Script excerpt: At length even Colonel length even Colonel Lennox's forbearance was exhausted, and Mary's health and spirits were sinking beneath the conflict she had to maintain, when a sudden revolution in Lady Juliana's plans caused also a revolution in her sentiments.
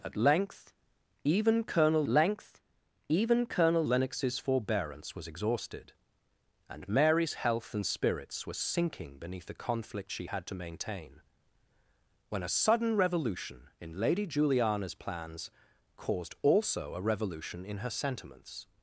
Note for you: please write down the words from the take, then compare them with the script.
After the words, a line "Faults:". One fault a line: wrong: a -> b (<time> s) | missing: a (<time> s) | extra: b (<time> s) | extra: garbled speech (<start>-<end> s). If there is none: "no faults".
At length even Colonel length even Colonel Lennox's forbearance was exhausted, and Mary's health and spirits were sinking beneath the conflict she had to maintain, when a sudden revolution in Lady Juliana's plans caused also a revolution in her sentiments.
Faults:
no faults